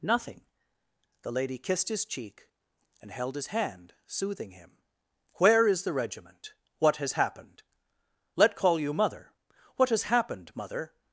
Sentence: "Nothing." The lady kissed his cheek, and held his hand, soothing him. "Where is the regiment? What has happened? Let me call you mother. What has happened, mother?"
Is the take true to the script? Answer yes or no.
no